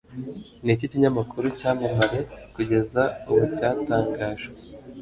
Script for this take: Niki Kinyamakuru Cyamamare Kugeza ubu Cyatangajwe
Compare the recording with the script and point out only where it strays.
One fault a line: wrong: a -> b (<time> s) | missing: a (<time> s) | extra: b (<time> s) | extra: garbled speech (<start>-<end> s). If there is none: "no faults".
no faults